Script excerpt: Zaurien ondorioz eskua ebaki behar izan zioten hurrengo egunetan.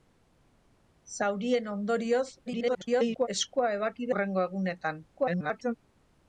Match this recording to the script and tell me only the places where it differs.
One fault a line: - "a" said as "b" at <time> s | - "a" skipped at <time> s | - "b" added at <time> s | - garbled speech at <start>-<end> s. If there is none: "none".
- garbled speech at 2.5-3.3 s
- "behar izan zioten" skipped at 4.1 s
- garbled speech at 5.2-5.7 s